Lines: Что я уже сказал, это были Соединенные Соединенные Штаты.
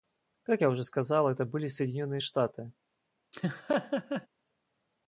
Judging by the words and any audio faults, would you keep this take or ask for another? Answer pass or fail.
fail